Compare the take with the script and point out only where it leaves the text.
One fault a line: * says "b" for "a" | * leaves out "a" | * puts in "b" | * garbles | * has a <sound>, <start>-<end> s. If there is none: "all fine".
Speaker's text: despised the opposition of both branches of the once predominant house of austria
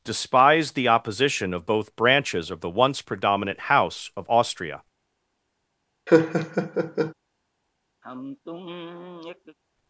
* has a laugh, 6.1-7.1 s
* has a sigh, 8.0-9.6 s